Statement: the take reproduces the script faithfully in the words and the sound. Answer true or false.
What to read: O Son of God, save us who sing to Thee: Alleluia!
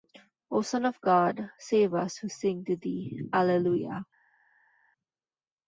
true